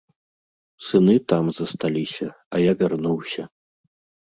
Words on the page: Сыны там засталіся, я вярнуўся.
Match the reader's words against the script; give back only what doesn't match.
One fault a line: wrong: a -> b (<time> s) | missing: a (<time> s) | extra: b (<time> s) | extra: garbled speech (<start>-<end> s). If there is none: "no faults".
extra: а (2.5 s)